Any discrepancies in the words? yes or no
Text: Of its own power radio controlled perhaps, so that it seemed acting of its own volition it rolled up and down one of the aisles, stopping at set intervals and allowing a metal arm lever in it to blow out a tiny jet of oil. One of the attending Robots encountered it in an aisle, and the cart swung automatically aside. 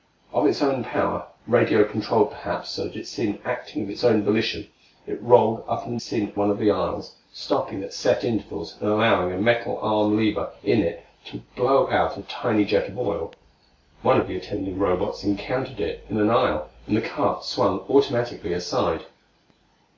yes